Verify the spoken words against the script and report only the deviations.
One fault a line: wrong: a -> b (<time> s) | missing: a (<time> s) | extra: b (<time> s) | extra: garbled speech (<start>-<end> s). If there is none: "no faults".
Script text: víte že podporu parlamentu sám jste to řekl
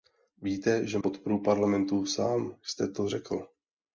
no faults